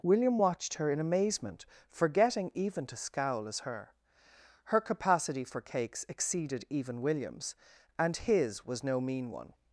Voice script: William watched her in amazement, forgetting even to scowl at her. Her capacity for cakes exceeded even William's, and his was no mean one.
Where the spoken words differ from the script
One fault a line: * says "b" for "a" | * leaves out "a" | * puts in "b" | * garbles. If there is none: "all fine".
* says "as" for "at"